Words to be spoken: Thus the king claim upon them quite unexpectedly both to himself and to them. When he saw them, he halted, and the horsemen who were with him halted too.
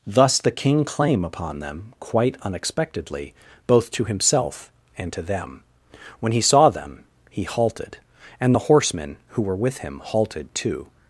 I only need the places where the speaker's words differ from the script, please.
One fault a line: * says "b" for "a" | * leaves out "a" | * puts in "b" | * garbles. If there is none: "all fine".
all fine